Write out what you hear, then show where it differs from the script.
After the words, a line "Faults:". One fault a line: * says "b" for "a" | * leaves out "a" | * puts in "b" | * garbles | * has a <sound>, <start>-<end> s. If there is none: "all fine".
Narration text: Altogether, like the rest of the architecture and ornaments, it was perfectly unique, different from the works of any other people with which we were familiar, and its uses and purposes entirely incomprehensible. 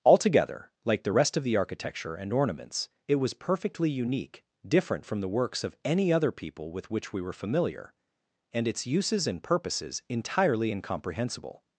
Altogether, like the rest of the architecture and ornaments, it was perfectly unique, different from the works of any other people with which we were familiar, and its uses and purposes entirely incomprehensible.
Faults:
all fine